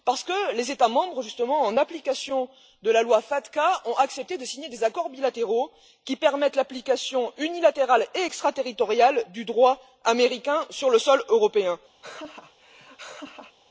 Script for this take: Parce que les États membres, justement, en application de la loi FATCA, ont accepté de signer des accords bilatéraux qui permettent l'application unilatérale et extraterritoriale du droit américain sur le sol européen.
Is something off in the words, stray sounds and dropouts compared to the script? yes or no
yes